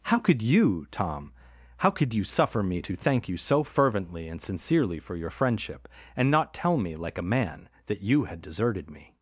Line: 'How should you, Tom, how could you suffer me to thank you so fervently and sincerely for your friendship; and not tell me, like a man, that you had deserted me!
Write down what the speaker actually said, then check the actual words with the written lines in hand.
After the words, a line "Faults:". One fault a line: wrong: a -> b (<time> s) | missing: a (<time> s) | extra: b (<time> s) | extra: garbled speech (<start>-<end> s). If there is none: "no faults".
'How could you, Tom, how could you suffer me to thank you so fervently and sincerely for your friendship; and not tell me, like a man, that you had deserted me!
Faults:
wrong: should -> could (0.2 s)